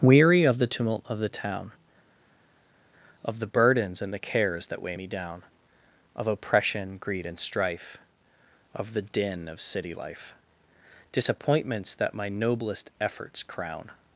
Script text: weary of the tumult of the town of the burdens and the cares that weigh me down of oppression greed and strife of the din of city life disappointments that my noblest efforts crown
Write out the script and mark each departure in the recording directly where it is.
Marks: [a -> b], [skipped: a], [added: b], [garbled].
weary of the tumult of the town of the burdens and the cares that weigh me down of oppression greed and strife of the din of city life disappointments that my noblest efforts crown